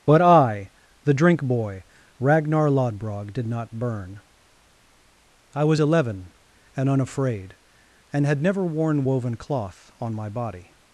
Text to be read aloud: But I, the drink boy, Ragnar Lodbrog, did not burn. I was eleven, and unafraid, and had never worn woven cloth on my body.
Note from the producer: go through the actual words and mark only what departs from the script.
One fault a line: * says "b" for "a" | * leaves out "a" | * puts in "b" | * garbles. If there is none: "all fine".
all fine